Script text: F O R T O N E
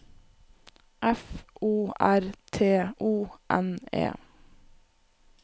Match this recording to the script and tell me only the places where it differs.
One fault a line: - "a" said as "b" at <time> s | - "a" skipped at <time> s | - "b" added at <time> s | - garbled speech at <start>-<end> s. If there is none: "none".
none